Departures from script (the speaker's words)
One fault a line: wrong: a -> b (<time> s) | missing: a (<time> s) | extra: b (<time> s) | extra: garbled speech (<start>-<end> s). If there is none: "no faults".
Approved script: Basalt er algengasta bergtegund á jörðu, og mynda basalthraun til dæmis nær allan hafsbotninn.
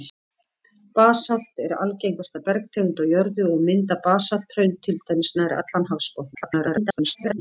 extra: garbled speech (6.3-7.4 s)